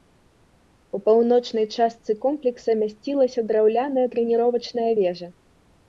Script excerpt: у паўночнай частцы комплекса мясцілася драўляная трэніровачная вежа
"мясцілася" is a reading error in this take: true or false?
false